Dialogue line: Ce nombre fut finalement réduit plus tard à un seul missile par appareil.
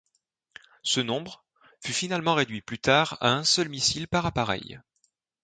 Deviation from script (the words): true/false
false